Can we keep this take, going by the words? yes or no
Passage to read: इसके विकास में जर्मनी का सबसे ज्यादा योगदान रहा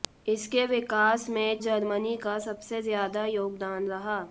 yes